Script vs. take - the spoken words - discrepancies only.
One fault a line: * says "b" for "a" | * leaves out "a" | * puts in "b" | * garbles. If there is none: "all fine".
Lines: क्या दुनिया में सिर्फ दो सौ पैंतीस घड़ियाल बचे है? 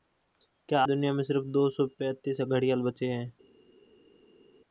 all fine